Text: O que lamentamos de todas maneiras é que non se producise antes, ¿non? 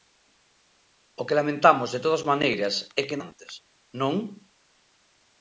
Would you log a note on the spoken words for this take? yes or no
yes